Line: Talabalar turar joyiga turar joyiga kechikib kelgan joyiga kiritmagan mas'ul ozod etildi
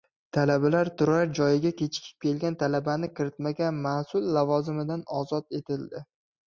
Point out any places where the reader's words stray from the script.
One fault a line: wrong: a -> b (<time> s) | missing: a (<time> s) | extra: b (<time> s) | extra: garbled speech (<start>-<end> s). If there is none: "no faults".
missing: turar joyiga (1.7 s)
wrong: joyiga -> talabani (2.6 s)
extra: lavozimidan (4.4 s)